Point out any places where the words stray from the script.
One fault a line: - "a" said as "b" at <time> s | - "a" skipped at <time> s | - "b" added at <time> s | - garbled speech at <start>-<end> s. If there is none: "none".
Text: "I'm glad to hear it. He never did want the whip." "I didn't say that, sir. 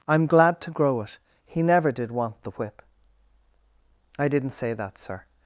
- "hear" said as "grow" at 0.7 s